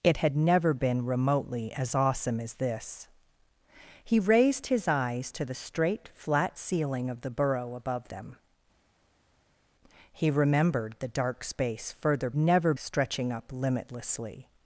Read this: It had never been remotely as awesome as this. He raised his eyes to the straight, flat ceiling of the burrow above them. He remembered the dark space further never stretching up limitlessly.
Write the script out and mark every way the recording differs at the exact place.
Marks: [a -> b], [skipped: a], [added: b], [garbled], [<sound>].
It had never been remotely as awesome as this. He raised his eyes to the straight, flat ceiling of the burrow above them. He remembered the dark space further never stretching up limitlessly.